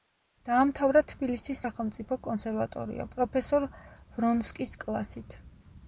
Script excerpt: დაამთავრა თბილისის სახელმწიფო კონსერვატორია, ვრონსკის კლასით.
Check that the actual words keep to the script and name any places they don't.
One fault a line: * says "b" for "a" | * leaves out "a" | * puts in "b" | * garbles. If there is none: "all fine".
* puts in "პროფესორ"